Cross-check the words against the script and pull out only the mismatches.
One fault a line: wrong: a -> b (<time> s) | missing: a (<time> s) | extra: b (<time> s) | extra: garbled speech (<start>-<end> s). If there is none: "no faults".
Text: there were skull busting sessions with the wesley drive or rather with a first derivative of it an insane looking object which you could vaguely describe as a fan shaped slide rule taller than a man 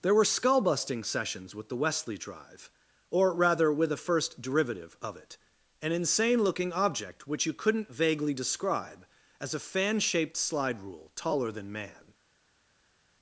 wrong: could -> couldn't (7.5 s)
missing: a (11.7 s)